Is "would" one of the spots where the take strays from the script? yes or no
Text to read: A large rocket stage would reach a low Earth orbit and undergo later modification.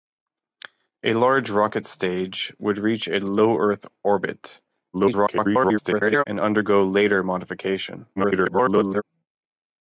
no